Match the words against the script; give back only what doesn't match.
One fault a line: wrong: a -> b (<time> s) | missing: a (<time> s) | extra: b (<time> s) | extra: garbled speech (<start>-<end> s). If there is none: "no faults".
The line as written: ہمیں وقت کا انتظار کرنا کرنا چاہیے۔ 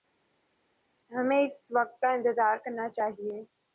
extra: اس (1.4 s)
missing: کرنا (2.9 s)